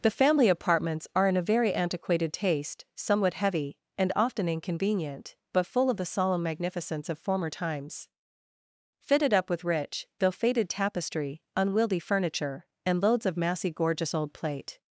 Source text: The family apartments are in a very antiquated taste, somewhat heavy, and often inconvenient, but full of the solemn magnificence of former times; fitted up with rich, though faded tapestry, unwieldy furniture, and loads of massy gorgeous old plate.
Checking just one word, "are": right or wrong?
right